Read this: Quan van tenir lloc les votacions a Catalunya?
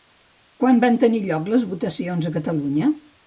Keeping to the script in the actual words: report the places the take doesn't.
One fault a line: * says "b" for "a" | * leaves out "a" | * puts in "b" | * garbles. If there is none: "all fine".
all fine